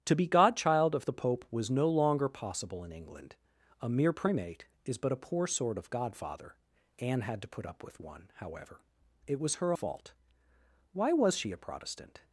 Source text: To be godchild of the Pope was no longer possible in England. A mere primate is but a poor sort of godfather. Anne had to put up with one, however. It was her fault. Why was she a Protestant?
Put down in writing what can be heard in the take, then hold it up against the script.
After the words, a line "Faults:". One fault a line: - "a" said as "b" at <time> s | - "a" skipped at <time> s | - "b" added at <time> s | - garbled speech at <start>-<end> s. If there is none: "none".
To be godchild of the Pope was no longer possible in England. A mere primate is but a poor sort of godfather. Anne had to put up with one, however. It was her fault. Why was she a Protestant?
Faults:
none